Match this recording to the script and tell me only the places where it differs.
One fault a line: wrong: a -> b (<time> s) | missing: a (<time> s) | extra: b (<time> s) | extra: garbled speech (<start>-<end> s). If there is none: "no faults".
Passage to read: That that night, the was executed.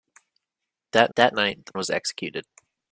no faults